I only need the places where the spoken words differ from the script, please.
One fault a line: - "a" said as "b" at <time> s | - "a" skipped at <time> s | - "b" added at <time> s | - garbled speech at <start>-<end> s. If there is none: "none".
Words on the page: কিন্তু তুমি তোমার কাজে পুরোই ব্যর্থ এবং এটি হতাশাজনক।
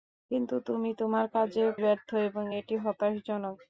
- "পুরোই" skipped at 1.6 s